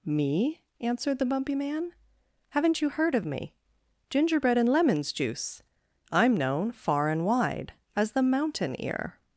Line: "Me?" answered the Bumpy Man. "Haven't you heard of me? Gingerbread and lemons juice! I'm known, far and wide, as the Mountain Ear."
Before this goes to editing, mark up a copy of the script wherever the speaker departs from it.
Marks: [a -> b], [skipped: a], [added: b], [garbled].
"Me?" answered the Bumpy Man. "Haven't you heard of me? Gingerbread and lemons juice! I'm known, far and wide, as the Mountain Ear."